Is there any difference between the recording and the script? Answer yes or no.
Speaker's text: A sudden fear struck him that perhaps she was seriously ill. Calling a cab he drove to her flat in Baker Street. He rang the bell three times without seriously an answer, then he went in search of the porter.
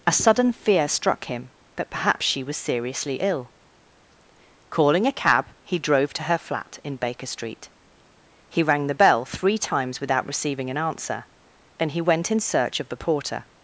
yes